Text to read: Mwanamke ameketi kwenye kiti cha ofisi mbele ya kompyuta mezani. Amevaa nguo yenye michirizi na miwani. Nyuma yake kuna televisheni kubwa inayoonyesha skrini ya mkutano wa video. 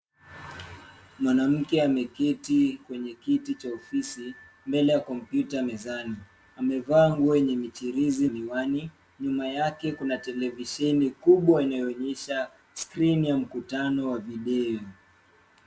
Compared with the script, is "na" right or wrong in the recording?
wrong